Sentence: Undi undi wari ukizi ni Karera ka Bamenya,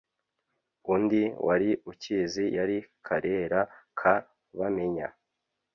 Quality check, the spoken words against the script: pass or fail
fail